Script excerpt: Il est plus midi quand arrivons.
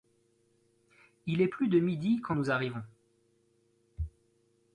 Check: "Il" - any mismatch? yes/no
no